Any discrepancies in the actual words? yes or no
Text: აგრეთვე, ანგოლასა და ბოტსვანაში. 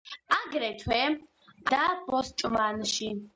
yes